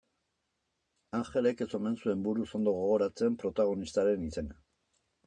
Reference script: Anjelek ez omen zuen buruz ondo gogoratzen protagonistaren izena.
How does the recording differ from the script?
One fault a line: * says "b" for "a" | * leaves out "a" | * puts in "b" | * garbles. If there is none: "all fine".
all fine